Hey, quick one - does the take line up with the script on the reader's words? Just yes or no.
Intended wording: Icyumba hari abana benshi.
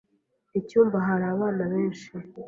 yes